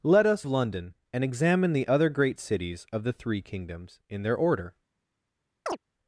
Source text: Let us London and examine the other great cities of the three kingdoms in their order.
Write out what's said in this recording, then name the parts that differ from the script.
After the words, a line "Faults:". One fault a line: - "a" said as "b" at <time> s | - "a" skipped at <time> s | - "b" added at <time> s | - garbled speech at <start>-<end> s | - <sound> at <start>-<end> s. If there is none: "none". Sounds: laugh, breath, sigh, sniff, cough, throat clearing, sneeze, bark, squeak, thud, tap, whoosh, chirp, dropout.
Let us London and examine the other great cities of the three kingdoms in their order.
Faults:
- chirp at 5.7-5.8 s